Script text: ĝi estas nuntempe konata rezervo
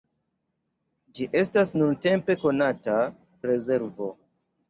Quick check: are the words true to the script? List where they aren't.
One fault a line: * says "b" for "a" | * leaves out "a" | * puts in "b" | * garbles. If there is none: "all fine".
all fine